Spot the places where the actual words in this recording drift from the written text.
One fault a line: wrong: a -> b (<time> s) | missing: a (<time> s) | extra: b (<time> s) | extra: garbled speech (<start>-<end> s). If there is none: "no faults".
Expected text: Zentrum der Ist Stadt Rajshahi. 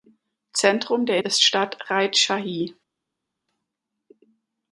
no faults